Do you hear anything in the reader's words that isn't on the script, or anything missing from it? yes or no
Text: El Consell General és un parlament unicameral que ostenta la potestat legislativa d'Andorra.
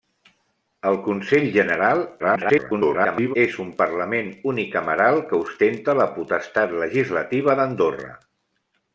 yes